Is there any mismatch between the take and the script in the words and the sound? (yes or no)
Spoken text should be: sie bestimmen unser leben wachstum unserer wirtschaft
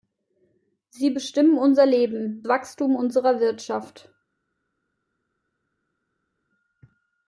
no